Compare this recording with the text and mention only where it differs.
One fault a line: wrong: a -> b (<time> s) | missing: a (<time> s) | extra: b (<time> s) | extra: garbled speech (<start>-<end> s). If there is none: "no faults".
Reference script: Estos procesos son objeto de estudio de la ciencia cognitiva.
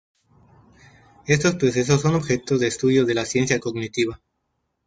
no faults